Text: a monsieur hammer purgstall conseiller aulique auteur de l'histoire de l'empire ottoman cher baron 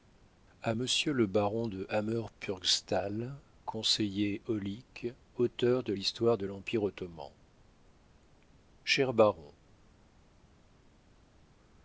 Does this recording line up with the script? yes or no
no